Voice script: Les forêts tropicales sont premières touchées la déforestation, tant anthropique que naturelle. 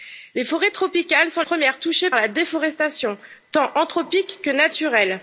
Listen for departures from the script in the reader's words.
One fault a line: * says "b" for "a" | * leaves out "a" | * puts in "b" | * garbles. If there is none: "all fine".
all fine